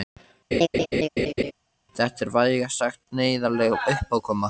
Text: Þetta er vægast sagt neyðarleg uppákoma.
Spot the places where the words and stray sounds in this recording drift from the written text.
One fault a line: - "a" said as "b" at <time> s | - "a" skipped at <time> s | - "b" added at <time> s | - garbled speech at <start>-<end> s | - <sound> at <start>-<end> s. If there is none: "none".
- laugh at 0.5-1.5 s